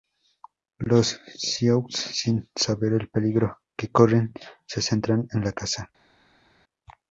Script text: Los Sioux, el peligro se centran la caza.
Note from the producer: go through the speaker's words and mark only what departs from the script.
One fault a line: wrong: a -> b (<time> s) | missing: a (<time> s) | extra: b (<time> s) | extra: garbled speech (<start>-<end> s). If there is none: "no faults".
extra: sin saber (1.9 s)
extra: que corren (3.8 s)
extra: en (5.3 s)